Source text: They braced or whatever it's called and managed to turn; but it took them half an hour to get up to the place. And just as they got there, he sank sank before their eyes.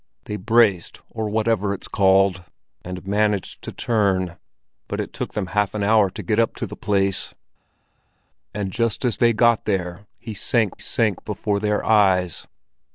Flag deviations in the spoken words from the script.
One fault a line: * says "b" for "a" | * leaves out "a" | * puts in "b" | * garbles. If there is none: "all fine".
all fine